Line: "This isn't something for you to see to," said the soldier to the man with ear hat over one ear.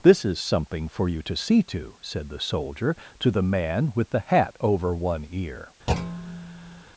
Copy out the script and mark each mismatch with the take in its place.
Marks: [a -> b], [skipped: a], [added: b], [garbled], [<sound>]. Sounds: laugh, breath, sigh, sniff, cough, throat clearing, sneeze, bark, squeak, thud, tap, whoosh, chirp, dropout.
"This [isn't -> is] something for you to see to," said the soldier to the man with [ear -> the] hat over one ear. [thud]